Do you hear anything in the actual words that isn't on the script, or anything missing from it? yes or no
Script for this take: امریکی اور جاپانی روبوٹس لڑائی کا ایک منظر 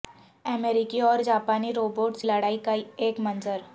no